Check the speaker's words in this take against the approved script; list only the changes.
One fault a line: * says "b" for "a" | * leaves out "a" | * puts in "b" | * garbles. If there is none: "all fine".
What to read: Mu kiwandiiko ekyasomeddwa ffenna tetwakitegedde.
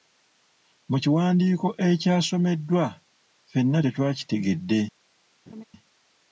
all fine